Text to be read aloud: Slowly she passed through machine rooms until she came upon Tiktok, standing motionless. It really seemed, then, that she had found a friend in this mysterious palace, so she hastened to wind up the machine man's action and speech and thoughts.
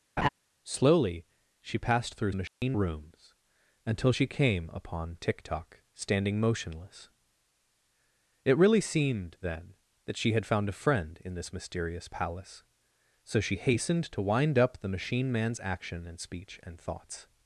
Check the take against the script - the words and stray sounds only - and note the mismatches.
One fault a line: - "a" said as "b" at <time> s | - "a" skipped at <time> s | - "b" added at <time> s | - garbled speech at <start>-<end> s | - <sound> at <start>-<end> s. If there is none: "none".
- laugh at 0.2-0.3 s
- dropout at 2.5-2.6 s